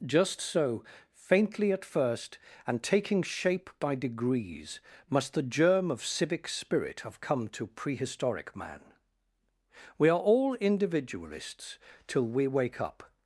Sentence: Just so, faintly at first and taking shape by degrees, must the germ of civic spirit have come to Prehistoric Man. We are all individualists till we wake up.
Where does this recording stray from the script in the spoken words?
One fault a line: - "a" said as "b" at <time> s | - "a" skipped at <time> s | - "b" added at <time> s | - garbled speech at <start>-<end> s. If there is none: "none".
none